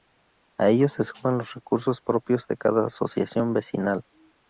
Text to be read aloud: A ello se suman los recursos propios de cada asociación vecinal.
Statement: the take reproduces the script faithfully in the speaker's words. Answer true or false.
true